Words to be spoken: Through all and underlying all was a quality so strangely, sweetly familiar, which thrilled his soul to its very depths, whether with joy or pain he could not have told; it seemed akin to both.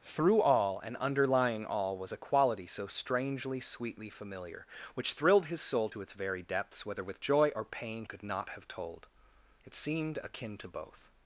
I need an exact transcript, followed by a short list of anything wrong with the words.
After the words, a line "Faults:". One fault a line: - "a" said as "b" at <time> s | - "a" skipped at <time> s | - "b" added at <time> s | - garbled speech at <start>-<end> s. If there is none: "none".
Through all and underlying all was a quality so strangely, sweetly familiar, which thrilled his soul to its very depths, whether with joy or pain could not have told; it seemed akin to both.
Faults:
- "he" skipped at 8.0 s